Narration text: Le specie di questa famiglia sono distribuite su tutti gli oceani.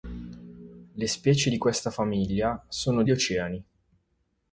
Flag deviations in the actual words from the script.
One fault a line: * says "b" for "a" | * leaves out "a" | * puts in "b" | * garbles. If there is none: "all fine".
* leaves out "distribuite su tutti"